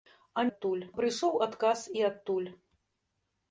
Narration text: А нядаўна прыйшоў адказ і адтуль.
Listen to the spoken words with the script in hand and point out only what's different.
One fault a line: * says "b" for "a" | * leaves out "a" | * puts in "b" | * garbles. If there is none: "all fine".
* says "адтуль" for "нядаўна"